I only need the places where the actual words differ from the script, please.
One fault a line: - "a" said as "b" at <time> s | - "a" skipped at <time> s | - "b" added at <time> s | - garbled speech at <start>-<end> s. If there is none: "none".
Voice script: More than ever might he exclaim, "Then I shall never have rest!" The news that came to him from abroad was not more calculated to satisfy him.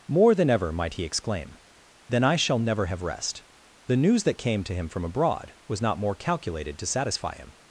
none